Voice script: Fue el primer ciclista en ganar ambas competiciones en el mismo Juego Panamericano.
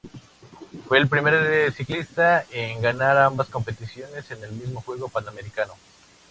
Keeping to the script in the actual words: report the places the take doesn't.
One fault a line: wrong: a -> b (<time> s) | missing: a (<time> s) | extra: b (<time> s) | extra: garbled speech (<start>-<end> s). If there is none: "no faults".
no faults